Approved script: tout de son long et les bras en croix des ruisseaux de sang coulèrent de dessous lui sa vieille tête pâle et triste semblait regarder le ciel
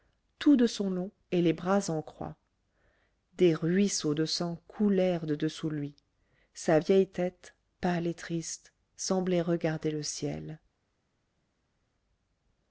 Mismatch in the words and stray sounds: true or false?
false